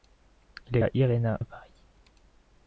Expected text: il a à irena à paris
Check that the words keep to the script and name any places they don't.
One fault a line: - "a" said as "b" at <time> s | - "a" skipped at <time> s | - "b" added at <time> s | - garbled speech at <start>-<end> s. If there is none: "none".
none